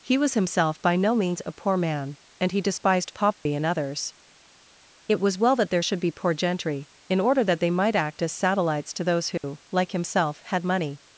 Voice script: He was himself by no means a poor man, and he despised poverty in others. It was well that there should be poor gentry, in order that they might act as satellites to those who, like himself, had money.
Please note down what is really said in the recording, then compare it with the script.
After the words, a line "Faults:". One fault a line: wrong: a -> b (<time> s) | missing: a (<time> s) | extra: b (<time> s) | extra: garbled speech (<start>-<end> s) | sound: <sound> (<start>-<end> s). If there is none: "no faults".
He was himself by no means a poor man, and he despised poverty in others. It was well that there should be poor gentry, in order that they might act as satellites to those who, like himself, had money.
Faults:
sound: dropout (3.3-3.5 s)
sound: dropout (9.4-9.4 s)